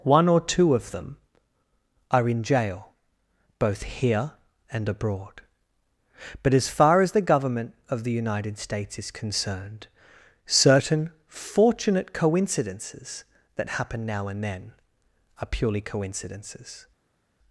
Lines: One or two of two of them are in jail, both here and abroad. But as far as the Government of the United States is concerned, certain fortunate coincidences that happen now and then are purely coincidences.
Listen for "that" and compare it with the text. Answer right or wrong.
right